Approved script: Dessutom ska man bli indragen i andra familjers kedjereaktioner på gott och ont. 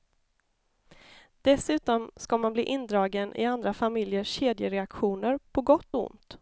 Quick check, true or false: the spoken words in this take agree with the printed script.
true